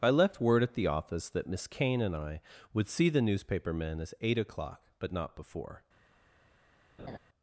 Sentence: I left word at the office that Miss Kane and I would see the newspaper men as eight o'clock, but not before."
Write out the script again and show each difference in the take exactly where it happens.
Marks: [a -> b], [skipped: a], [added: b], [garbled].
I left word at the office that Miss Kane and I would see the newspaper men as eight o'clock, but not before."